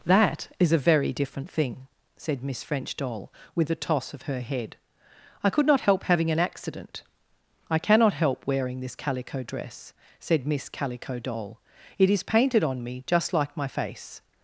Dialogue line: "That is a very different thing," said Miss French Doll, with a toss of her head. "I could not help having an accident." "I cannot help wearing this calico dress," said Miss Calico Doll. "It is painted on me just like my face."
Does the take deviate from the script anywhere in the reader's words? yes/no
no